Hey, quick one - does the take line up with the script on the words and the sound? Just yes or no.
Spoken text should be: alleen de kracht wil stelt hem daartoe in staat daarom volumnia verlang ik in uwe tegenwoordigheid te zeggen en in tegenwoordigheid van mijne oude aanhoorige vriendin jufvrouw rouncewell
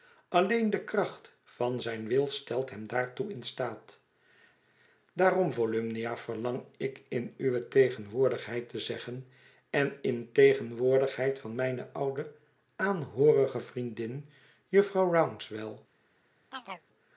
no